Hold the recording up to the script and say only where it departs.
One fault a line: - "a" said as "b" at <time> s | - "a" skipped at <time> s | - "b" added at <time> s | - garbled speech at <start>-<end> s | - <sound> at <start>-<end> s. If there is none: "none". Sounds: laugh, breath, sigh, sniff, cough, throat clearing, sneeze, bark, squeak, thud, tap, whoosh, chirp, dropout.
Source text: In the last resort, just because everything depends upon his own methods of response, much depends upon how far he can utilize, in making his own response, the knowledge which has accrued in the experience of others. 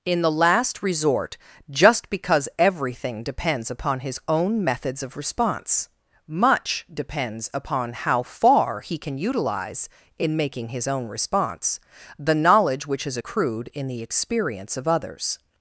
none